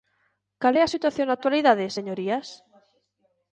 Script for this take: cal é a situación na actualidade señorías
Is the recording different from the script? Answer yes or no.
no